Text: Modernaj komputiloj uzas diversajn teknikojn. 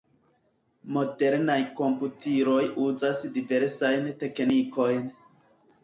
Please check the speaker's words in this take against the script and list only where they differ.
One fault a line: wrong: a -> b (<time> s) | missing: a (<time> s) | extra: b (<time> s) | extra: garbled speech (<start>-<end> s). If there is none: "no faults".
no faults